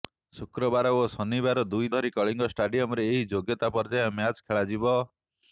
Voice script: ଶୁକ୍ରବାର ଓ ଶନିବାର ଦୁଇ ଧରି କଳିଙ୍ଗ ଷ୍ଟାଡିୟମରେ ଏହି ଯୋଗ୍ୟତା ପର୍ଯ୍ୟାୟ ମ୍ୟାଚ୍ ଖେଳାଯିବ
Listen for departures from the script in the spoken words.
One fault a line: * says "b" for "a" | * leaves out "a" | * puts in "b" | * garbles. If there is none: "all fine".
all fine